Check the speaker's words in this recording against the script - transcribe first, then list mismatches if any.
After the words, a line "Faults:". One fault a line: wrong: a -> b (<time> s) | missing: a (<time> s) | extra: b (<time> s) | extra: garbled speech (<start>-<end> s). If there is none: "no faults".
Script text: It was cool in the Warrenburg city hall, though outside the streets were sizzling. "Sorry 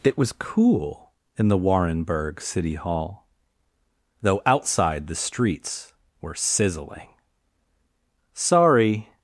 It was cool in the Warrenburg city hall, though outside the streets were sizzling. "Sorry
Faults:
no faults